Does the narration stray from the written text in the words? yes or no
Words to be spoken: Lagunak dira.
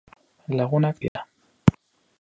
no